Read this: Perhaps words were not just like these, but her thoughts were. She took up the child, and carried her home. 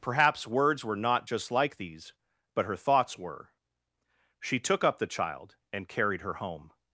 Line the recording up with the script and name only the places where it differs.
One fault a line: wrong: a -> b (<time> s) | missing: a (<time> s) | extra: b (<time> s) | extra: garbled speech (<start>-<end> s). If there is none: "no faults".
no faults